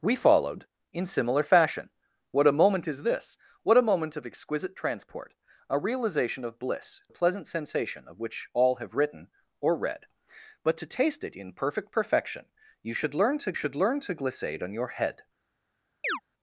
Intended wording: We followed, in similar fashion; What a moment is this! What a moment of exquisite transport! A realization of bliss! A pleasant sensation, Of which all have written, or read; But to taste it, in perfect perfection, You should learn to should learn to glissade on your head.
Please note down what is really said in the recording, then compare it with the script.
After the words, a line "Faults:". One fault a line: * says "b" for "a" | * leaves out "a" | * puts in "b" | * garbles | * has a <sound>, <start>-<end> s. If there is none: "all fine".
We followed, in similar fashion; What a moment is this! What a moment of exquisite transport! A realization of bliss! A pleasant sensation, Of which all have written, or read; But to taste it, in perfect perfection, You should learn to should learn to glissade on your head.
Faults:
* has a chirp, 16.0-16.2 s